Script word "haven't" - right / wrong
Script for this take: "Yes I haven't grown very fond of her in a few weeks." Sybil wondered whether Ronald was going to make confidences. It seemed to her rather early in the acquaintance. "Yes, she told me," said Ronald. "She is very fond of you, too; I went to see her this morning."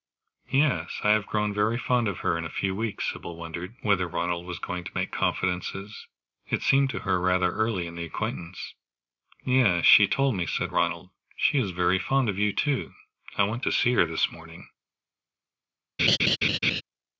wrong